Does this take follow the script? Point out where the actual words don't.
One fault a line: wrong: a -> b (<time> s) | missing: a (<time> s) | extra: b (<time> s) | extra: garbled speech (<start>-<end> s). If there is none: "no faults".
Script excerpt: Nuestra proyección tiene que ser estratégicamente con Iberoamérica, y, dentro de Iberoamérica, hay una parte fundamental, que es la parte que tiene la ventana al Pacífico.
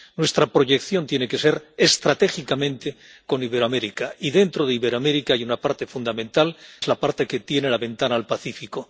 missing: que (6.5 s)